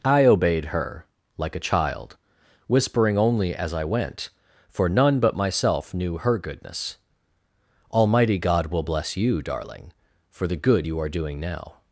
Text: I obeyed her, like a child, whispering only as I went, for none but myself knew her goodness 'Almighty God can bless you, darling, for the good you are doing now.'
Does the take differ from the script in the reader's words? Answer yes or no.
yes